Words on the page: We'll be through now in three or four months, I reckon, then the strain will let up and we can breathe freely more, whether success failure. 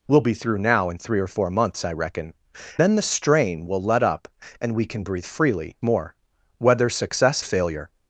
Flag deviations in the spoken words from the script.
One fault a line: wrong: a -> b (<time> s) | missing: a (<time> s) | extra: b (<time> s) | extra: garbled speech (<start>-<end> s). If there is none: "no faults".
no faults